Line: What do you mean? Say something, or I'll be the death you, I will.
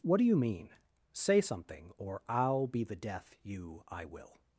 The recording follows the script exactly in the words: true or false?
true